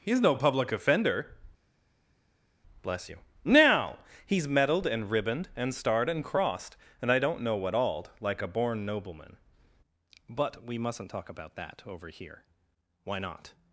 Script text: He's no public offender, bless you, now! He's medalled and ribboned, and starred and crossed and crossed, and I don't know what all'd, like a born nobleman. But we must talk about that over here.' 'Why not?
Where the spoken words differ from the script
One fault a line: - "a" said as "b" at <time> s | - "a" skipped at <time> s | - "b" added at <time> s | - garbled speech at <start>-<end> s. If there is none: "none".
- "crossed and" skipped at 7.1 s
- "must" said as "mustn't" at 10.8 s